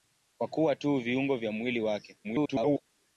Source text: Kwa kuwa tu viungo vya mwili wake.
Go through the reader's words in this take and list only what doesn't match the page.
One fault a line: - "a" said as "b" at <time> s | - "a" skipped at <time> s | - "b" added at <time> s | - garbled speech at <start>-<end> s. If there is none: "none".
- garbled speech at 2.2-2.8 s